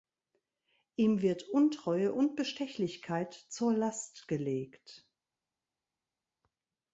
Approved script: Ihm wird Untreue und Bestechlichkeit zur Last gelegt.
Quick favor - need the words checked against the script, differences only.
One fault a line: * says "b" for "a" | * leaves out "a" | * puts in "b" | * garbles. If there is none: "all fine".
all fine